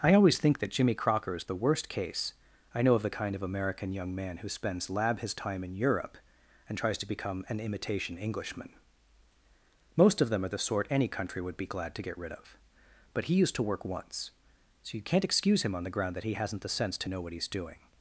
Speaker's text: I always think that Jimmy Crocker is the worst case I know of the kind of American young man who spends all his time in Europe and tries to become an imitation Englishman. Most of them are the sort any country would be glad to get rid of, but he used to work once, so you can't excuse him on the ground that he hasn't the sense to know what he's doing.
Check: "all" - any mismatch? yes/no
yes